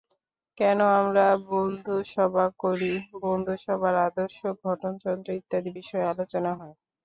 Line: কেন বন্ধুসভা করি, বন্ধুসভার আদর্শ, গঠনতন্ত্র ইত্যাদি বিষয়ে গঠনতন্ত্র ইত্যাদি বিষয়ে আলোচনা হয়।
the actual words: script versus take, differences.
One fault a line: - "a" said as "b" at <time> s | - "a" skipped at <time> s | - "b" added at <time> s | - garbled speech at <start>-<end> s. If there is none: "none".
- "আমরা" added at 1.0 s
- "গঠনতন্ত্র ইত্যাদি বিষয়ে" skipped at 6.1 s